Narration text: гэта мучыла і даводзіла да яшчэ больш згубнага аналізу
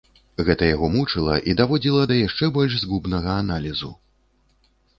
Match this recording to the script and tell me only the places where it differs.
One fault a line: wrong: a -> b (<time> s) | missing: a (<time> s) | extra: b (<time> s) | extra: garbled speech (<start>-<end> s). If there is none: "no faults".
extra: яго (0.7 s)